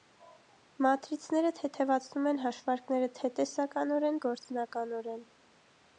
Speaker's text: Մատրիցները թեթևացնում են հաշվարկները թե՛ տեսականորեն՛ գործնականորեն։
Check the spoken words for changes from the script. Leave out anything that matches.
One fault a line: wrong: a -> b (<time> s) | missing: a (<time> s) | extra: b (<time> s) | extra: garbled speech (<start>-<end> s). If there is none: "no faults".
no faults